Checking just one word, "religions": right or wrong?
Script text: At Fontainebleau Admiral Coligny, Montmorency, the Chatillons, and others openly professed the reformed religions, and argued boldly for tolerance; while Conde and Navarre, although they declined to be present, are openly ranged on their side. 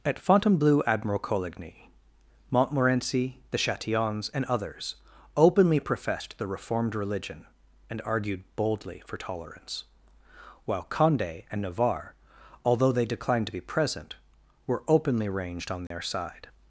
wrong